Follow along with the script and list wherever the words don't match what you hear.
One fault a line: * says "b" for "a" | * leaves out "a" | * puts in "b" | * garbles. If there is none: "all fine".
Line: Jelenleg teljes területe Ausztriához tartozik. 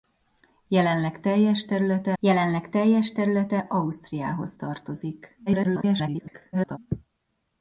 * puts in "jelenleg teljes területe"
* garbles